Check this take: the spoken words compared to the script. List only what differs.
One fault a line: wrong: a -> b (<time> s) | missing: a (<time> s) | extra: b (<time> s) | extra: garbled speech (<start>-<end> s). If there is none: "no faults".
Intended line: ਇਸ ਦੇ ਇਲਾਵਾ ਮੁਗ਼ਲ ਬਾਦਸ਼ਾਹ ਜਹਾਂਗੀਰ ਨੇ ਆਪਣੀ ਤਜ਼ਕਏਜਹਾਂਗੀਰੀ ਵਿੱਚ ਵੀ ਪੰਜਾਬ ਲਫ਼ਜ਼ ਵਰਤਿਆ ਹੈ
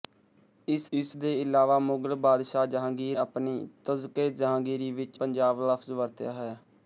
extra: ਇਸ (0.9 s)
missing: ਨੇ (3.2 s)
missing: ਵੀ (5.2 s)